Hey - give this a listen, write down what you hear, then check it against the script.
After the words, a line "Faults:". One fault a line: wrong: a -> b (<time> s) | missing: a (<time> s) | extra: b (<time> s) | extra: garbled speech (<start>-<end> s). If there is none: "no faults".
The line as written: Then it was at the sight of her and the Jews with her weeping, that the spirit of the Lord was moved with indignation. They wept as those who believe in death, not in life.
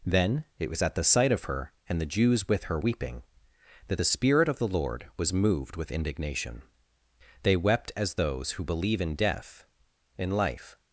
Then it was at the sight of her and the Jews with her weeping, that the spirit of the Lord was moved with indignation. They wept as those who believe in death, in life.
Faults:
missing: not (9.7 s)